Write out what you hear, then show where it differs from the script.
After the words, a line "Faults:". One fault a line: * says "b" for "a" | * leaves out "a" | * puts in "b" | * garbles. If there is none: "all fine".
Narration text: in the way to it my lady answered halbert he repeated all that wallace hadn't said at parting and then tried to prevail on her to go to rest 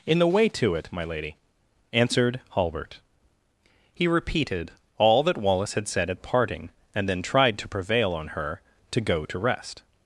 in the way to it my lady answered halbert he repeated all that wallace had said at parting and then tried to prevail on her to go to rest
Faults:
* says "had" for "hadn't"